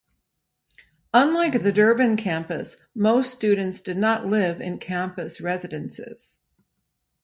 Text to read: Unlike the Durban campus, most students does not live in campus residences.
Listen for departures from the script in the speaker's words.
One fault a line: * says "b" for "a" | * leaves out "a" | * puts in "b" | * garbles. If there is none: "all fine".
* says "did" for "does"